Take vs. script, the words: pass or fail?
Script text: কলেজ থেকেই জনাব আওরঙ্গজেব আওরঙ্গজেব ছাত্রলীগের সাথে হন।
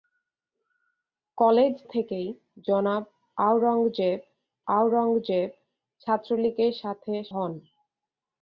pass